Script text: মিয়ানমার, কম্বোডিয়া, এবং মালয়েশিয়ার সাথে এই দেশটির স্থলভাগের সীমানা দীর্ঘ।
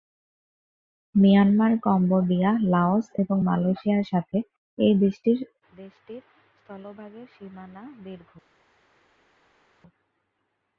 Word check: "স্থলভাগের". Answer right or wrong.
right